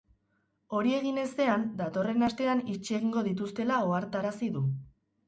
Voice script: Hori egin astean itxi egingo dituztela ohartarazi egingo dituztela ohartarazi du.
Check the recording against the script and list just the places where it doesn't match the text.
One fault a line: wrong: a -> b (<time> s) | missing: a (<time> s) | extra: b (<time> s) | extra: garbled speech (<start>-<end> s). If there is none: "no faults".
extra: ezean datorren (1.2 s)
missing: egingo dituztela ohartarazi (4.5 s)